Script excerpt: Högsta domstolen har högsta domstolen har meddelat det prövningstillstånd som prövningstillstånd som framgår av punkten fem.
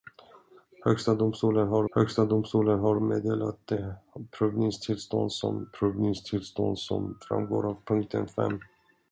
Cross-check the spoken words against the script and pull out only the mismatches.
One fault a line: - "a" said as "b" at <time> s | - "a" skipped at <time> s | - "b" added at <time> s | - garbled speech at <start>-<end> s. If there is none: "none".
none